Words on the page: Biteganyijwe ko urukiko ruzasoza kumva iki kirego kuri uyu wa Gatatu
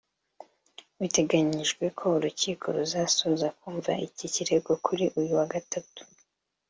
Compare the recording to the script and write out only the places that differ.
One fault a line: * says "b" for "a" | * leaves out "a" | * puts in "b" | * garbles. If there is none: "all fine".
all fine